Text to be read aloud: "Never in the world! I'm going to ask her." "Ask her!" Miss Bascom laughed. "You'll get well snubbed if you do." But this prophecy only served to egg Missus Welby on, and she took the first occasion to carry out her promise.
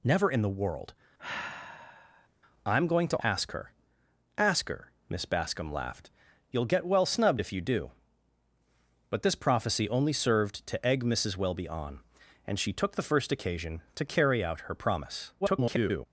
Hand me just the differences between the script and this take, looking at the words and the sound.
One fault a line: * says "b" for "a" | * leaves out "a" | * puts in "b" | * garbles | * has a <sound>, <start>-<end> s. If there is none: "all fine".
* has a sigh, 1.2-2.3 s
* garbles